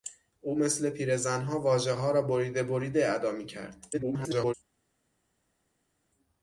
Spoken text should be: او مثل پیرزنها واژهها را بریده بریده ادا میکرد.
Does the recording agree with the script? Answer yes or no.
no